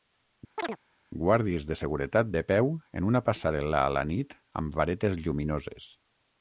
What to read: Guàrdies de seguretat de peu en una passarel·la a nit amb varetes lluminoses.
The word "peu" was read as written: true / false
true